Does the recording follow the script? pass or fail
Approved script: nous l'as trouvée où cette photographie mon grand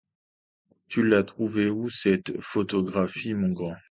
fail